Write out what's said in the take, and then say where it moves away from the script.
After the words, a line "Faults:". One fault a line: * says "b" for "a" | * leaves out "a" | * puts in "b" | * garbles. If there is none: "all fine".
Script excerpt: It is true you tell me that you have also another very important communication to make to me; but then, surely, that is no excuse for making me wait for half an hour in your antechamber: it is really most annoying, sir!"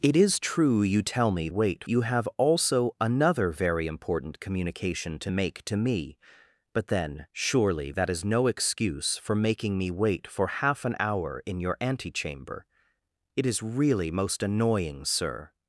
It is true you tell me wait you have also another very important communication to make to me; but then, surely, that is no excuse for making me wait for half an hour in your antechamber: it is really most annoying, sir!"
Faults:
* says "wait" for "that"